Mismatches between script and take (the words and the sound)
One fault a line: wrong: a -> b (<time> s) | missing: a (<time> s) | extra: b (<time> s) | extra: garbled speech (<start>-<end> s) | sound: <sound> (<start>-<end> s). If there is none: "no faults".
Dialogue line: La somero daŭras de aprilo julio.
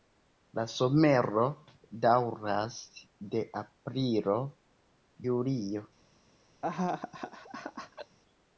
sound: laugh (6.6-8.2 s)